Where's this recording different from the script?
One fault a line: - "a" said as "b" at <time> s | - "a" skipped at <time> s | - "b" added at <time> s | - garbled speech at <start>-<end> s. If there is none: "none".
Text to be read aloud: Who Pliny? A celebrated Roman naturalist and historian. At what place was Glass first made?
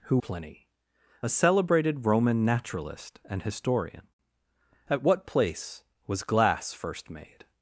none